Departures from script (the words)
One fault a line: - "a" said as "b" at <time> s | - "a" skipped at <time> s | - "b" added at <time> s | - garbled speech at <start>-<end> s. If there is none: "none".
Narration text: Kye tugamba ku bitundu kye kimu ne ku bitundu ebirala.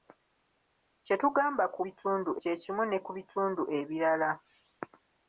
none